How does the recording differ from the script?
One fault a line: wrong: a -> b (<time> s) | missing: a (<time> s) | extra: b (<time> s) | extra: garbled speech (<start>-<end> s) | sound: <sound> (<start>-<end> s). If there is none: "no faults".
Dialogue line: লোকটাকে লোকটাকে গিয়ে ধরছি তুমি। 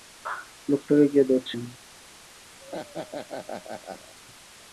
missing: লোকটাকে (1.1 s)
wrong: তুমি -> আমি (1.6 s)
sound: laugh (2.6-4.1 s)